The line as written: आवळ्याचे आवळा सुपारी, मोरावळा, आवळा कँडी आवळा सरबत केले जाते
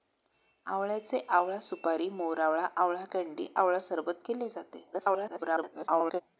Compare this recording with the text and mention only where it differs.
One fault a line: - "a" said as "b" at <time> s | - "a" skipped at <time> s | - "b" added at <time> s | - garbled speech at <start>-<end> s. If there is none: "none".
- garbled speech at 4.9-6.2 s